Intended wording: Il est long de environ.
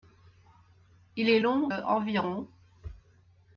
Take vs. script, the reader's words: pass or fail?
fail